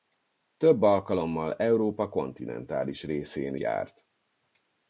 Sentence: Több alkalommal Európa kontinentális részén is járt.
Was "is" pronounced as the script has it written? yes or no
no